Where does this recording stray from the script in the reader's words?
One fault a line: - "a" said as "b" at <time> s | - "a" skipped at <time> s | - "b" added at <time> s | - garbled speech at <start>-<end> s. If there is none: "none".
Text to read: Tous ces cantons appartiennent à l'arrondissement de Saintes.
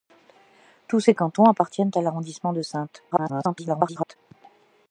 - garbled speech at 3.1-4.2 s